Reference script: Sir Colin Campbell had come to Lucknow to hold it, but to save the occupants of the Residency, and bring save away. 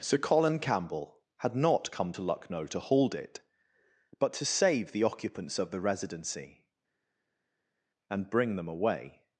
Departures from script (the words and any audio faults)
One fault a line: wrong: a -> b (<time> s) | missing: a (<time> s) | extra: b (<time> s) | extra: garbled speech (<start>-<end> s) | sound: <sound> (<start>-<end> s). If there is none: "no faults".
extra: not (1.6 s)
wrong: save -> them (8.6 s)